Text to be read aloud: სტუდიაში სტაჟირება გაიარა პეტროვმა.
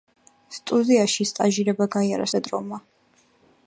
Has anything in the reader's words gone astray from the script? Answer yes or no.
no